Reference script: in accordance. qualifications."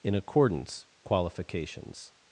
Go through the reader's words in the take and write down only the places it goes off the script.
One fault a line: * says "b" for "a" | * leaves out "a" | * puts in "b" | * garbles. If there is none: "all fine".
all fine